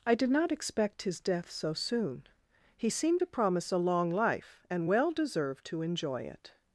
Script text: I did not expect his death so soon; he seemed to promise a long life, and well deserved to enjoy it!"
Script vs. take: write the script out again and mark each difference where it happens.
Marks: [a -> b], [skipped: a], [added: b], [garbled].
I did not expect his death so soon; he seemed to promise a long life, and well deserved to enjoy it!"